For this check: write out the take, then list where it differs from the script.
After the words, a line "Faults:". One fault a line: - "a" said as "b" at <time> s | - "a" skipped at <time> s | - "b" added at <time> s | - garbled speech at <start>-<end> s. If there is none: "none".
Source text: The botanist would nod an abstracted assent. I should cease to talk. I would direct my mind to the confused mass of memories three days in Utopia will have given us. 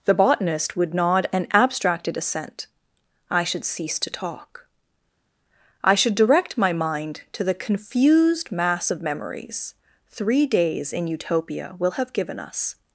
The botanist would nod an abstracted assent. I should cease to talk. I should direct my mind to the confused mass of memories three days in Utopia will have given us.
Faults:
- "would" said as "should" at 5.9 s